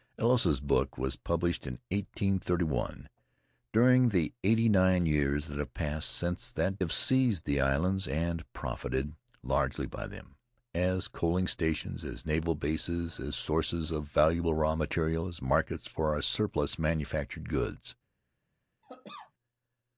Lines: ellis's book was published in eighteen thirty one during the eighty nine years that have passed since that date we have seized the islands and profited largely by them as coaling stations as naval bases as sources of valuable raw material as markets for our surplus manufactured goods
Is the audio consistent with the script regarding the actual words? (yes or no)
no